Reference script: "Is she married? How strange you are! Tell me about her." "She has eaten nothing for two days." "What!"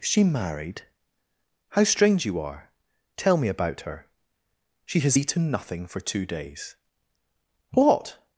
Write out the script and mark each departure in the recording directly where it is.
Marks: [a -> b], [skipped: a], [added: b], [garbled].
"Is she married? How strange you are! Tell me about her." "She has eaten nothing for two days." "What!"